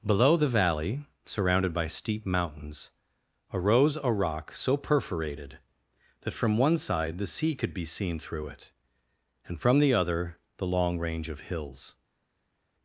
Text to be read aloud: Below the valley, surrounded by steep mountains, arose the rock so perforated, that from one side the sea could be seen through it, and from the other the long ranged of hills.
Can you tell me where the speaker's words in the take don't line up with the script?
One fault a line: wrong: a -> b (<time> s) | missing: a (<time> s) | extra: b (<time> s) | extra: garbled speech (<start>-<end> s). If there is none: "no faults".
wrong: the -> a (4.0 s)
wrong: ranged -> range (11.0 s)